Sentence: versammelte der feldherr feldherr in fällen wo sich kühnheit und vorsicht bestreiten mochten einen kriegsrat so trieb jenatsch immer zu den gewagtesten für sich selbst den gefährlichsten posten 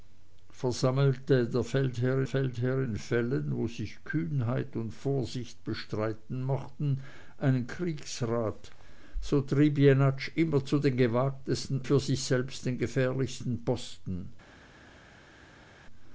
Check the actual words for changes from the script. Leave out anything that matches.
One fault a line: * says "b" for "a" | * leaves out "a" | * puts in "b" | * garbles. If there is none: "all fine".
all fine